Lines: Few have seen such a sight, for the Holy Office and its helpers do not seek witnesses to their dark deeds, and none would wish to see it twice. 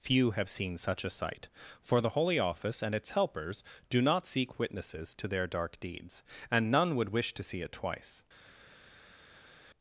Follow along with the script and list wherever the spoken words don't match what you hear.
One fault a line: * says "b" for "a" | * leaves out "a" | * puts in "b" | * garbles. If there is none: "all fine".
all fine